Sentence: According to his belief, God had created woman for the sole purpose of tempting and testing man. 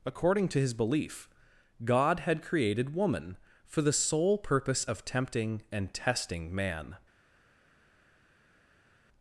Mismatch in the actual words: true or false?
false